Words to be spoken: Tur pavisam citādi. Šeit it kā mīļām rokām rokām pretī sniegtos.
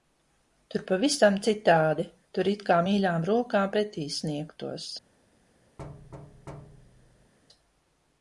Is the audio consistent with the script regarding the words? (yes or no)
no